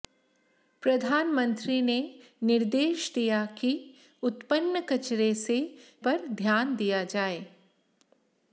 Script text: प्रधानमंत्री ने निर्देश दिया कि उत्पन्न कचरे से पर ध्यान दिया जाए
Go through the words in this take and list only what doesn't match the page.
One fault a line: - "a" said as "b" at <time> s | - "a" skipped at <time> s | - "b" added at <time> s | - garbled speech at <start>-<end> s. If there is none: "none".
none